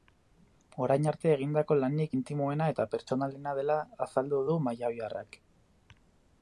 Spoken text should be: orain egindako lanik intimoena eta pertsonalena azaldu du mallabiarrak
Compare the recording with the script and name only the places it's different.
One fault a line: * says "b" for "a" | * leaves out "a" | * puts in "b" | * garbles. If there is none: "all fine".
* puts in "arte"
* puts in "dela"